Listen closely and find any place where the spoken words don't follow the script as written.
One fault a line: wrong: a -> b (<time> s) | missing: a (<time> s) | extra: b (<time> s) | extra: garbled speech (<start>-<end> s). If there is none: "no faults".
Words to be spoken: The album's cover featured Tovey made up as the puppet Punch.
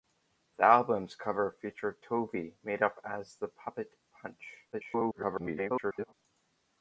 extra: garbled speech (4.7-6.1 s)